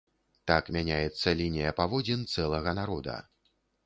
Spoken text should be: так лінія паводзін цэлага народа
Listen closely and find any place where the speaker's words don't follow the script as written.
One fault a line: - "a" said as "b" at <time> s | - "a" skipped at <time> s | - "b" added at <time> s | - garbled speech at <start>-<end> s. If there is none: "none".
- "мяняецца" added at 0.8 s